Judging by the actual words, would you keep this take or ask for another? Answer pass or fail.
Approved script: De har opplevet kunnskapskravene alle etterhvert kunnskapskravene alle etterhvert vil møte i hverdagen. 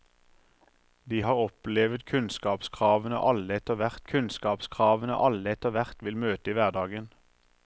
pass